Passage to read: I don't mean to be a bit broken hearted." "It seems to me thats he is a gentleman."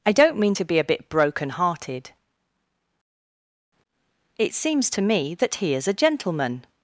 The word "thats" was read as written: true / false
false